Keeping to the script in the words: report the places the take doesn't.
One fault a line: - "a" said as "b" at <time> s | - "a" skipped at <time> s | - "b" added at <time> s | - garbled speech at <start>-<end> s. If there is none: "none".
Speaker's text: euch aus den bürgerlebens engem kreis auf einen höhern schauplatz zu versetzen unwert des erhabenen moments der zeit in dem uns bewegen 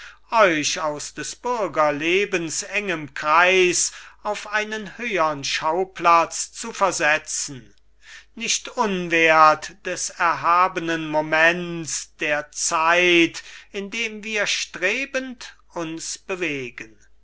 - "den" said as "des" at 1.1 s
- "nicht" added at 8.3 s
- "wir strebend" added at 14.2 s